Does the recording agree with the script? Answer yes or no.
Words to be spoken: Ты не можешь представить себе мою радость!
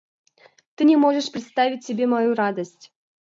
yes